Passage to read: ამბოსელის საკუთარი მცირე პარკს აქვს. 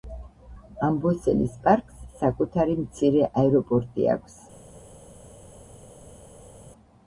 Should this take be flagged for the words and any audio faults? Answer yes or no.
yes